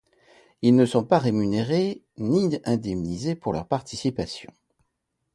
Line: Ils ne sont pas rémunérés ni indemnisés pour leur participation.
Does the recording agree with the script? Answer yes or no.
yes